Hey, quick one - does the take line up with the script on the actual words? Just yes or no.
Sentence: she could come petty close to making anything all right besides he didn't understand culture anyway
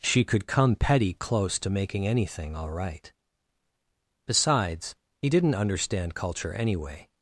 yes